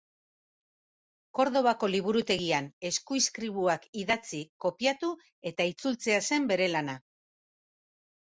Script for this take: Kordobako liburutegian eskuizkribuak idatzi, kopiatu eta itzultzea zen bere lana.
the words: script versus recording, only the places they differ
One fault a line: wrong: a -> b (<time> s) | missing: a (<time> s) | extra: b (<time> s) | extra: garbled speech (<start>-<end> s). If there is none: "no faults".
no faults